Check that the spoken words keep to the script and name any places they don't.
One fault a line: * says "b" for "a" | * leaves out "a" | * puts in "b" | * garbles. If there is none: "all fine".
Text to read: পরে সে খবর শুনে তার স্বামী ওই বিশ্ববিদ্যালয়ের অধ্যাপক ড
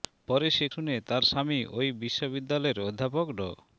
* leaves out "খবর"